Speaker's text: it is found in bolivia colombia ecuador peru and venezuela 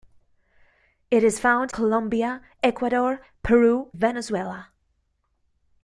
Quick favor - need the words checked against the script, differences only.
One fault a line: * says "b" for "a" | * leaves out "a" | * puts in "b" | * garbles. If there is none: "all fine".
* leaves out "in bolivia"
* leaves out "and"